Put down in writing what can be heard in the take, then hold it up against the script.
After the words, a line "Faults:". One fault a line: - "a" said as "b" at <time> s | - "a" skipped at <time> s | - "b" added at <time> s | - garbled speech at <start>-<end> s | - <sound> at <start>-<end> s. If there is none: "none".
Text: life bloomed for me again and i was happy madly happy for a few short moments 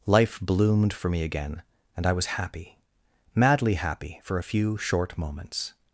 life bloomed for me again and i was happy madly happy for a few short moments
Faults:
none